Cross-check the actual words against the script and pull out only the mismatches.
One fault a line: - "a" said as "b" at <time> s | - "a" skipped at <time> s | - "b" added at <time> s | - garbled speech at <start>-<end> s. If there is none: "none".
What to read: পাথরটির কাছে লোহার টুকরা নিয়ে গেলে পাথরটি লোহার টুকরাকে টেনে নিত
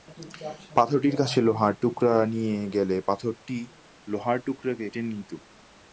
none